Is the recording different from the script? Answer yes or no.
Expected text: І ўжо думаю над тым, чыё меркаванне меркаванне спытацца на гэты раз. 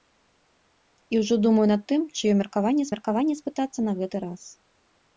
no